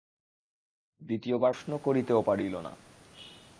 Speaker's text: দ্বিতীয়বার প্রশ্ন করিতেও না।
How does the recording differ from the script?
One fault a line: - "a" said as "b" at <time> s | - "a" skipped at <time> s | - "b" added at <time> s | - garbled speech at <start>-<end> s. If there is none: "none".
- "পারিল" added at 2.2 s